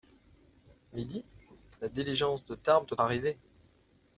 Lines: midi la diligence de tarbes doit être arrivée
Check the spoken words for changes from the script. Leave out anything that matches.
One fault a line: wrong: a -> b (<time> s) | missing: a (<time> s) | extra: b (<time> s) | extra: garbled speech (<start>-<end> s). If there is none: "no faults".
missing: être (3.0 s)